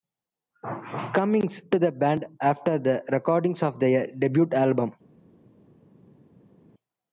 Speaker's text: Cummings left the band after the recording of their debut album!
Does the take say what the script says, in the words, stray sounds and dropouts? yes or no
no